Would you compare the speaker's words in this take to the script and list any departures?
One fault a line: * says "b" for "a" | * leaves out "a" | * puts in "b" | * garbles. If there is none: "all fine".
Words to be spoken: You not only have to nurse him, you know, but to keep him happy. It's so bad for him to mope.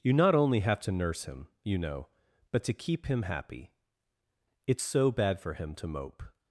all fine